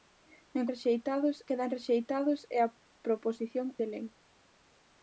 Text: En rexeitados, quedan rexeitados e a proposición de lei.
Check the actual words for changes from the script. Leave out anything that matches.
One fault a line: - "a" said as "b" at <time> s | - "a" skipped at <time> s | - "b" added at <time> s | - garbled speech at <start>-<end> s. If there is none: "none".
none